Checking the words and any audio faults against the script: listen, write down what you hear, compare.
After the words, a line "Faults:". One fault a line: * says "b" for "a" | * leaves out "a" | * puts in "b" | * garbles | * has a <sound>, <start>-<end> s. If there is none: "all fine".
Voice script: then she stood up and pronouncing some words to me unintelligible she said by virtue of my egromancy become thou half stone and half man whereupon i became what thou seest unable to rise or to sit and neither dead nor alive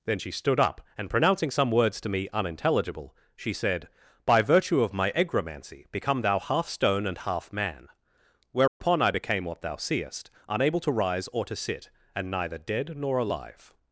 then she stood up and pronouncing some words to me unintelligible she said by virtue of my egromancy become thou half stone and half man whereupon i became what thou seest unable to rise or to sit and neither dead nor alive
Faults:
* has a dropout, 8.7-8.8 s